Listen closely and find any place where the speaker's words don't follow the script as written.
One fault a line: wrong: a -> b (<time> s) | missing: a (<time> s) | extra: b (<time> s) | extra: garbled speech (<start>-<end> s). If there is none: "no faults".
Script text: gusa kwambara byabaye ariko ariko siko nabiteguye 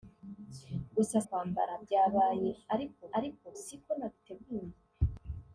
no faults